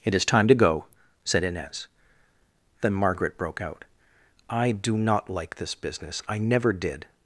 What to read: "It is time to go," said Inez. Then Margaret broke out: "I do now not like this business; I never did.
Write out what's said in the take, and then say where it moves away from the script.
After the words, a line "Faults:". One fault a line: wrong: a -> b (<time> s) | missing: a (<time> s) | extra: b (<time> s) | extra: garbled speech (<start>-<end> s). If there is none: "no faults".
"It is time to go," said Inez. Then Margaret broke out: "I do not like this business; I never did.
Faults:
missing: now (5.0 s)